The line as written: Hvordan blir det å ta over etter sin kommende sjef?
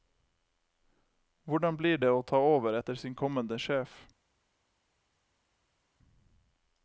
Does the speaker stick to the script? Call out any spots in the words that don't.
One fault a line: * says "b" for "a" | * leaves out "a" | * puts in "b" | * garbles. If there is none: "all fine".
all fine